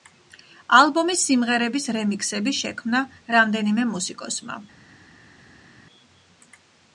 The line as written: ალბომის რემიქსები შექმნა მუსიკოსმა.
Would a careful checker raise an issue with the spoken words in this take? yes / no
yes